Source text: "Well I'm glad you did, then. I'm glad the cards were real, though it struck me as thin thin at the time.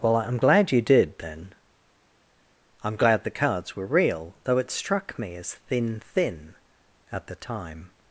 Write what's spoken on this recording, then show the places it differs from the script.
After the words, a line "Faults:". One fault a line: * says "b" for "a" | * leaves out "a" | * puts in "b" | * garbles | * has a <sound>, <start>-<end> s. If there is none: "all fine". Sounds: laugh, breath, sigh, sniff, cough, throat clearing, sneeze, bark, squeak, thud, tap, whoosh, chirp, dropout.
"Well I'm glad you did, then. I'm glad the cards were real, though it struck me as thin thin at the time.
Faults:
all fine